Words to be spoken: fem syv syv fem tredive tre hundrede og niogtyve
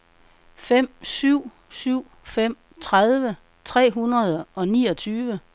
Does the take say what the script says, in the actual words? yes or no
yes